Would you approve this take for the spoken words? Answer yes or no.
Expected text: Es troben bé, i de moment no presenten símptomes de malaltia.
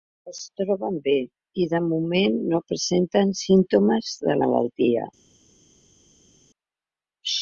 yes